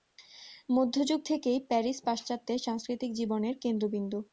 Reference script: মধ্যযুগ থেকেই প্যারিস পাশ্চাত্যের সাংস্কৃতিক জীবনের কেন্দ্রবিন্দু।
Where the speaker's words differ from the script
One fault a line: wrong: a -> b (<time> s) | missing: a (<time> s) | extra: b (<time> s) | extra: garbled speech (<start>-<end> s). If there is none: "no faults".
no faults